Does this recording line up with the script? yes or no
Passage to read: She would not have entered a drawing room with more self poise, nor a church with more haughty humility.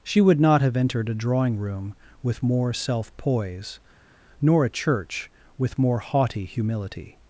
yes